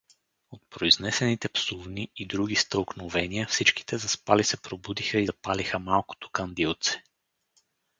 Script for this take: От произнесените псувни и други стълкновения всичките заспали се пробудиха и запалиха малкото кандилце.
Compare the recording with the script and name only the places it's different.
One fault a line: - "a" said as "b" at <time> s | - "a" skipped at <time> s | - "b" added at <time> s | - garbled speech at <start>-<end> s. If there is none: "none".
none